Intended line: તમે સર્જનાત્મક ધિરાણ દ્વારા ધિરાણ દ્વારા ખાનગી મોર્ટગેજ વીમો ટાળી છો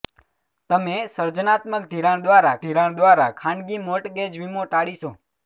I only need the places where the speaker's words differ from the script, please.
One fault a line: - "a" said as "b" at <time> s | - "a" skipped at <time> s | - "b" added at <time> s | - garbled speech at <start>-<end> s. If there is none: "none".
none